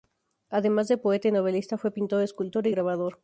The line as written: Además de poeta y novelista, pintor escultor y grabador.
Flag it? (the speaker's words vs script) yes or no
yes